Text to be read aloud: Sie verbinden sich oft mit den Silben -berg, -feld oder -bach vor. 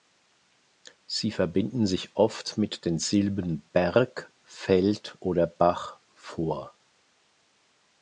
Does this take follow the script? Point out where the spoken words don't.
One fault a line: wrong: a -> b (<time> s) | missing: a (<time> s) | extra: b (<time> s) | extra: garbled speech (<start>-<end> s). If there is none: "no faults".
no faults